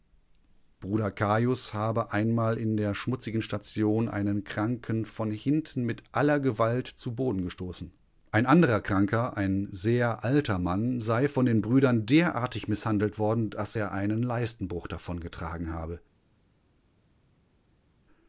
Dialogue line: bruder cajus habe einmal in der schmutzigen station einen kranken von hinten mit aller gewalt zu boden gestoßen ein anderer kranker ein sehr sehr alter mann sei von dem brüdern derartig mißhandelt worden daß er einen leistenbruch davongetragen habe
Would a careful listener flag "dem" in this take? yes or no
yes